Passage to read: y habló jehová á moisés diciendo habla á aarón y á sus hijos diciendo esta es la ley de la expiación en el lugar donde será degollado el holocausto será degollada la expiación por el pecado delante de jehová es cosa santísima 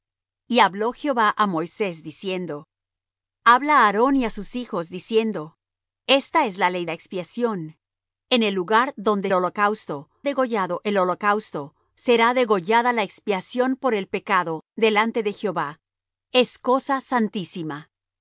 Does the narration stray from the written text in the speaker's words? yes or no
yes